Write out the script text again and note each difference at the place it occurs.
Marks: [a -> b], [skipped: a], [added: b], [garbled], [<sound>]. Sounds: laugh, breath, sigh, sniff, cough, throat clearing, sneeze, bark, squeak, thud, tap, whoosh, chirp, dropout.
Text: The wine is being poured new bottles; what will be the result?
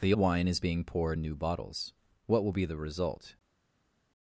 The wine is being poured new bottles; what will be the result?